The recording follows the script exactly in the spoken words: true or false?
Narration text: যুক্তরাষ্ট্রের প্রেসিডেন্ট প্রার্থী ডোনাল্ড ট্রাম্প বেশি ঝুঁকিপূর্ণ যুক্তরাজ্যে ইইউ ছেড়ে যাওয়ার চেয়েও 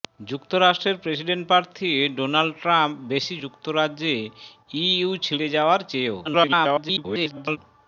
false